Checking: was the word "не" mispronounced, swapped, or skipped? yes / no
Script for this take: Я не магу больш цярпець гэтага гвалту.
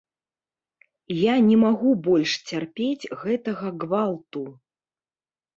no